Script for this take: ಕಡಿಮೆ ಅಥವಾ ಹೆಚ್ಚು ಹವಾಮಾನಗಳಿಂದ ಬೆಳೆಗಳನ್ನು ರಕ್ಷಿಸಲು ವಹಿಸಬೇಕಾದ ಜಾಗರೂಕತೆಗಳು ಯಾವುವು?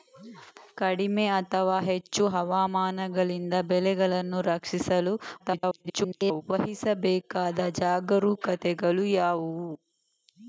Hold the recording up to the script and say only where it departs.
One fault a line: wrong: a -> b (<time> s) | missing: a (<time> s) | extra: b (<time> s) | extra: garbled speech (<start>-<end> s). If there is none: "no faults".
extra: garbled speech (5.4-6.4 s)